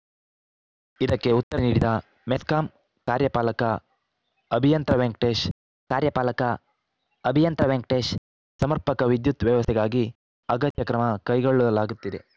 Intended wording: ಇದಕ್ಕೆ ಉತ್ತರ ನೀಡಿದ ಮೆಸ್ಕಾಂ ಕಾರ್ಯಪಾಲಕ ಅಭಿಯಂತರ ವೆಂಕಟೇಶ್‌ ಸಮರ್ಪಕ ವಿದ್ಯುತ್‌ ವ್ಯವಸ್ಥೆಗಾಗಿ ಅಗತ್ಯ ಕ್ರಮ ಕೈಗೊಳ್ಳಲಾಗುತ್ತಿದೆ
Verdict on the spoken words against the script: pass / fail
fail